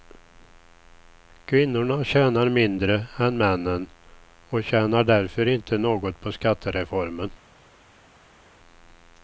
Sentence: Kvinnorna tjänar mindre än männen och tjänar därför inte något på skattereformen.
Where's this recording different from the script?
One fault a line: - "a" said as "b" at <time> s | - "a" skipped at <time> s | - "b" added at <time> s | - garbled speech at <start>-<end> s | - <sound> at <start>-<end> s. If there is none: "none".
none